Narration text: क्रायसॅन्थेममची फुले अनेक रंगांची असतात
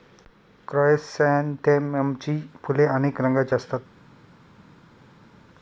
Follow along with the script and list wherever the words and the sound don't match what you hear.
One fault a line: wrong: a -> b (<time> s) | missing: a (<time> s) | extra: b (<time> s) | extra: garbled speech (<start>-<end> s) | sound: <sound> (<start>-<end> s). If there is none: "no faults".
no faults